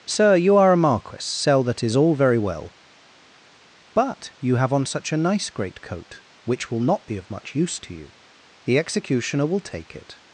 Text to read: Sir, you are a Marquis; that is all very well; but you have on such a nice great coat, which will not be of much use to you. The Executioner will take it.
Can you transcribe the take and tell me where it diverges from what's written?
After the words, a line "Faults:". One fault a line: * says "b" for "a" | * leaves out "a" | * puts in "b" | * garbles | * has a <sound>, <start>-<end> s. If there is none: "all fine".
Sir, you are a Marquis; sell that is all very well; but you have on such a nice great coat, which will not be of much use to you. The Executioner will take it.
Faults:
* puts in "sell"